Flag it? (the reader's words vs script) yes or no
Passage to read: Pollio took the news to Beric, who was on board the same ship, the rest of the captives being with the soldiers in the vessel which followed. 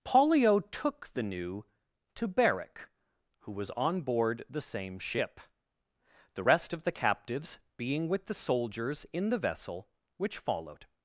yes